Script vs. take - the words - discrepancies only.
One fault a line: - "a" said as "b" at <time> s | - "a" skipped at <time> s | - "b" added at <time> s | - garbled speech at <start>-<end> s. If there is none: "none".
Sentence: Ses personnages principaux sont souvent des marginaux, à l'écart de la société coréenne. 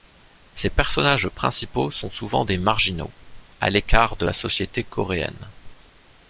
none